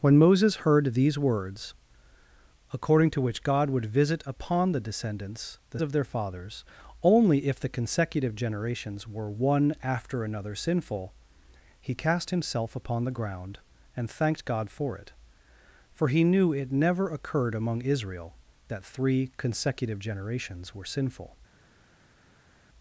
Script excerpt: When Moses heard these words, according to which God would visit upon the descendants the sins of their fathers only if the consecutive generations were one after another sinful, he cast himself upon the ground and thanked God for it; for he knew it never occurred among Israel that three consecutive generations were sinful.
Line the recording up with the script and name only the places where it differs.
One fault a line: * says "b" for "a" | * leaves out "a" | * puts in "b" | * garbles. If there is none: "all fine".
* leaves out "sins"